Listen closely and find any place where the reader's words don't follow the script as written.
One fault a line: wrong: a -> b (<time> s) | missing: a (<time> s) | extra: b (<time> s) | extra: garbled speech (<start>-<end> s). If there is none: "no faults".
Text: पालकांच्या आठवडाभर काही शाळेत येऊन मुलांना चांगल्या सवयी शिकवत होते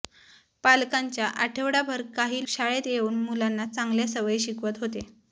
no faults